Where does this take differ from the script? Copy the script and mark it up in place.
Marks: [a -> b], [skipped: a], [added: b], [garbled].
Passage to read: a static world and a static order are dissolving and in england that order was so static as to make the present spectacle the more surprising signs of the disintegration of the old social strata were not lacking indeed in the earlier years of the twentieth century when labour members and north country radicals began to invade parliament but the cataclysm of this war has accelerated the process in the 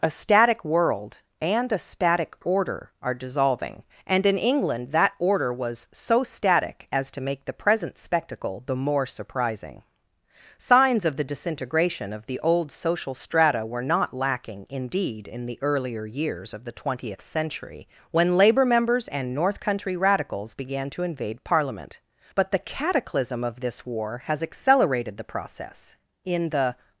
a static world and a static order are dissolving and in england that order was so static as to make the present spectacle the more surprising signs of the disintegration of the old social strata were not lacking indeed in the earlier years of the twentieth century when labour members and north country radicals began to invade parliament but the cataclysm of this war has accelerated the process in the